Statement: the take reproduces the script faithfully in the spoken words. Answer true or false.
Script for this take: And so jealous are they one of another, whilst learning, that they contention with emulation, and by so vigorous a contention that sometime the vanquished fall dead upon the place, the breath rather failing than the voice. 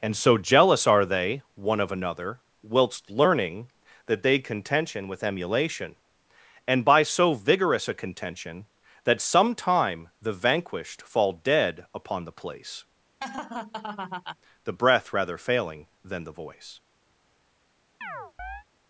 true